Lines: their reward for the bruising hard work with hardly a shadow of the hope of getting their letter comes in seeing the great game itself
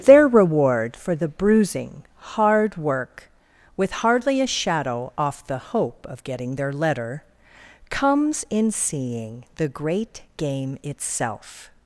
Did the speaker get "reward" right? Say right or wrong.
right